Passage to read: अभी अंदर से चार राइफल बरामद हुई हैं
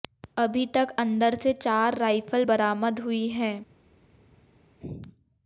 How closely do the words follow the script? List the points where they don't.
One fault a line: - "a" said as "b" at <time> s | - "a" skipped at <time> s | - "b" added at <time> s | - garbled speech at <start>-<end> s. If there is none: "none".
- "तक" added at 0.7 s